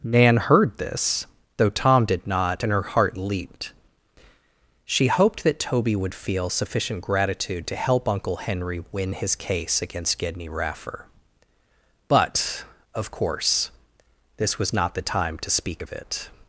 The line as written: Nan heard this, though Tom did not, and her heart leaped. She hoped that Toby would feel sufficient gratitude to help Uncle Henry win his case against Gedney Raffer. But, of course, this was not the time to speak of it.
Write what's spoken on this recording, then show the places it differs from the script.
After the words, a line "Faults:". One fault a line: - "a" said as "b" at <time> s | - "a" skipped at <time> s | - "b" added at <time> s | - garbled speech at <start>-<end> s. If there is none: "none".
Nan heard this, though Tom did not, and her heart leaped. She hoped that Toby would feel sufficient gratitude to help Uncle Henry win his case against Gedney Raffer. But, of course, this was not the time to speak of it.
Faults:
none